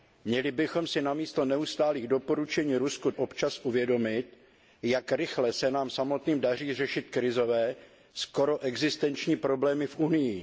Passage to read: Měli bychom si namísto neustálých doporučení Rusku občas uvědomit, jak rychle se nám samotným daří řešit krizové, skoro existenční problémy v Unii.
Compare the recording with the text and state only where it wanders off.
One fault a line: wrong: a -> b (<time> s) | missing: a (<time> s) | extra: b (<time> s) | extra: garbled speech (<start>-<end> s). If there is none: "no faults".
no faults